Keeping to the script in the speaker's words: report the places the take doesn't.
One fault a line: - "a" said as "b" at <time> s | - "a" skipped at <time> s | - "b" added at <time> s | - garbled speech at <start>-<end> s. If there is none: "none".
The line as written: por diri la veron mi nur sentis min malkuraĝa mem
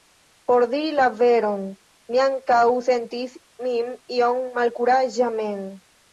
- "nur" said as "ankaŭ" at 2.3 s
- "iom" added at 4.2 s